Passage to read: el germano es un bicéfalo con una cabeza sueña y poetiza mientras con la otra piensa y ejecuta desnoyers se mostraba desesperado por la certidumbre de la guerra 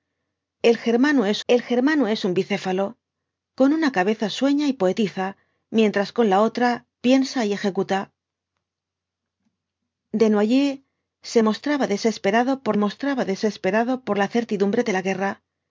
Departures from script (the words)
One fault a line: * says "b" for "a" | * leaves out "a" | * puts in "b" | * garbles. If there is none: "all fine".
* puts in "el germano es"
* puts in "mostraba desesperado por"